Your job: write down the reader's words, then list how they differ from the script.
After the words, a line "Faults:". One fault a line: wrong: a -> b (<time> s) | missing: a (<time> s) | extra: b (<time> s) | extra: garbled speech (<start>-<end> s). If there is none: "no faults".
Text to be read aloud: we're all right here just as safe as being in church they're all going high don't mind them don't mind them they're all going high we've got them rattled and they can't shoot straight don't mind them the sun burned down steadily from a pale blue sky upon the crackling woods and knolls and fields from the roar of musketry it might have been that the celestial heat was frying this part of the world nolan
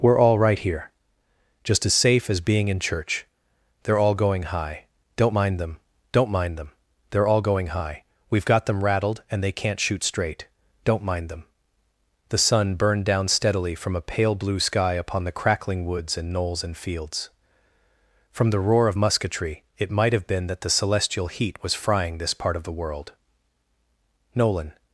we're all right here just as safe as being in church they're all going high don't mind them don't mind them they're all going high we've got them rattled and they can't shoot straight don't mind them the sun burned down steadily from a pale blue sky upon the crackling woods and knolls and fields from the roar of musketry it might have been that the celestial heat was frying this part of the world nolan
Faults:
no faults